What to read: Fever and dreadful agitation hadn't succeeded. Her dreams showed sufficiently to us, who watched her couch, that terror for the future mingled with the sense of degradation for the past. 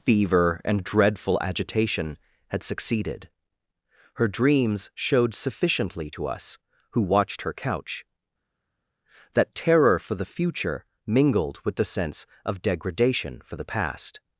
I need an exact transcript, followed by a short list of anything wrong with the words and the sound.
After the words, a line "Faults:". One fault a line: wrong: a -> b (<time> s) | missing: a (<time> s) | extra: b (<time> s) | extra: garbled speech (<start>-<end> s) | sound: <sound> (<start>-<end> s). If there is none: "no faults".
Fever and dreadful agitation had succeeded. Her dreams showed sufficiently to us, who watched her couch, that terror for the future mingled with the sense of degradation for the past.
Faults:
wrong: hadn't -> had (2.5 s)